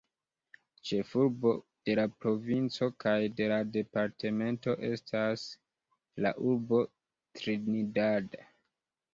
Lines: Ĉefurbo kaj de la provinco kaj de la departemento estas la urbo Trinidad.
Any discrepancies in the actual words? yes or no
yes